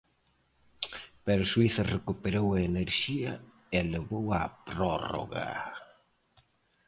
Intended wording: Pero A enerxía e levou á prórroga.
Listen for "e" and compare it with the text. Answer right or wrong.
right